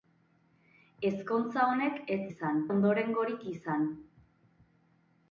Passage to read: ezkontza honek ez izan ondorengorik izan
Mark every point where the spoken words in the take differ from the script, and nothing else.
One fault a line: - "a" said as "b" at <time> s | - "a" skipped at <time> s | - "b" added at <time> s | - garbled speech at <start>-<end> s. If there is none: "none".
none